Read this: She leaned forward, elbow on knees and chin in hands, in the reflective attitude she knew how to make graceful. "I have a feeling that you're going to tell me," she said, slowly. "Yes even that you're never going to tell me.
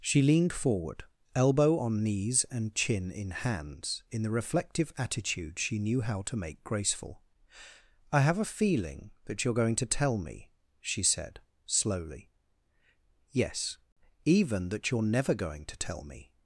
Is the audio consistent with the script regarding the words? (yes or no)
yes